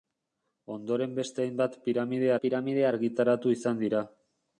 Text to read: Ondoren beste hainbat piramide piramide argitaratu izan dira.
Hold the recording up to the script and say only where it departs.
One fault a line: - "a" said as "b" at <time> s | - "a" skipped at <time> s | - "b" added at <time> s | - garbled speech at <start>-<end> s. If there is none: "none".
none